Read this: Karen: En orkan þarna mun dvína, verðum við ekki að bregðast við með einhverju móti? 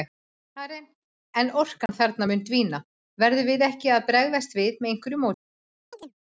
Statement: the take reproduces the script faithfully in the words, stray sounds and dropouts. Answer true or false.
false